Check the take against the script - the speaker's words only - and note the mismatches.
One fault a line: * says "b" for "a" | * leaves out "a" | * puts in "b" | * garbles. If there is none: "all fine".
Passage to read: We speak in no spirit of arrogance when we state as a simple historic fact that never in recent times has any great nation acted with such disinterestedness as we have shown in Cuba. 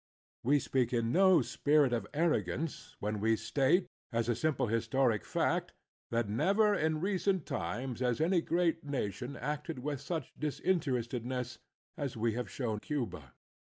* leaves out "in"